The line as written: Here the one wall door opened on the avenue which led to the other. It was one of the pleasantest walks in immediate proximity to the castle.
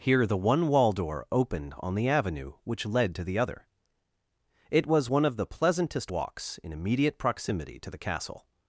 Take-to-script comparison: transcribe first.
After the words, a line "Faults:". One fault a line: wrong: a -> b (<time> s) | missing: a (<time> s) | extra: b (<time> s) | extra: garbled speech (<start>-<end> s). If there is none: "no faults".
Here the one wall door opened on the avenue which led to the other. It was one of the pleasantest walks in immediate proximity to the castle.
Faults:
no faults